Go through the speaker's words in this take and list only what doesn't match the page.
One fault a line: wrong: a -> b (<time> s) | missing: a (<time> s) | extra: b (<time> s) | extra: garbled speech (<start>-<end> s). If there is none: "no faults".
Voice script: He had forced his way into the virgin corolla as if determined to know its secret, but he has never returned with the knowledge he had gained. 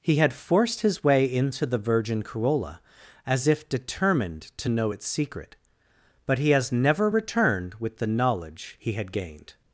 no faults